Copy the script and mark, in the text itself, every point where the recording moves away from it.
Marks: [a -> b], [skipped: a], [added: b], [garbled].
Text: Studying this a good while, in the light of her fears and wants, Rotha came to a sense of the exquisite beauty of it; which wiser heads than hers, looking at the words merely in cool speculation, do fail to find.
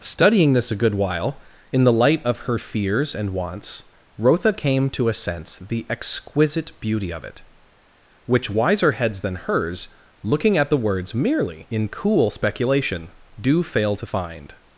Studying this a good while, in the light of her fears and wants, Rotha came to a sense [skipped: of] the exquisite beauty of it; which wiser heads than hers, looking at the words merely in cool speculation, do fail to find.